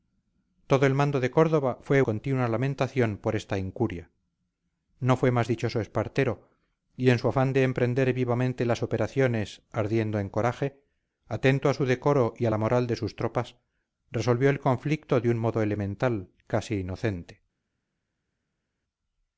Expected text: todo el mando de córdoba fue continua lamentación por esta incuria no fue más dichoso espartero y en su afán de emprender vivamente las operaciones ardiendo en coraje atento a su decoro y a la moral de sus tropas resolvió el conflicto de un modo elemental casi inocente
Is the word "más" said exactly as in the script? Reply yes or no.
yes